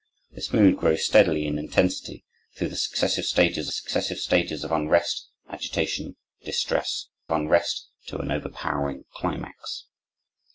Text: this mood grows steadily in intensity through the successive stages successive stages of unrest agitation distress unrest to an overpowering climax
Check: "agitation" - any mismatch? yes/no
no